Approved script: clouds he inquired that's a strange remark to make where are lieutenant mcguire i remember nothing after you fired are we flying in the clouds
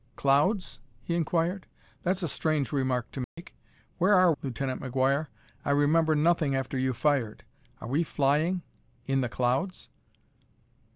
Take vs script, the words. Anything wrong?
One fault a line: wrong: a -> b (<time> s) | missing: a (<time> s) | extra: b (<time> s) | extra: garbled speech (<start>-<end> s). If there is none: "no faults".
no faults